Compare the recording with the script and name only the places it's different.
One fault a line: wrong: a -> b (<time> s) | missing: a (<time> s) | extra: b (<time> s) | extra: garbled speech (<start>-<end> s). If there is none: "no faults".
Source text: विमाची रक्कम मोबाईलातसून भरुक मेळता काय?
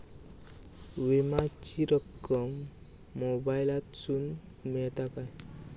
missing: भरुक (4.3 s)